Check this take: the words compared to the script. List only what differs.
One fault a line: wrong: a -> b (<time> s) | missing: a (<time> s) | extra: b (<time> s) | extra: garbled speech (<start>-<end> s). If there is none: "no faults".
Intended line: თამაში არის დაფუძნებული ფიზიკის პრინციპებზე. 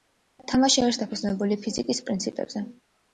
no faults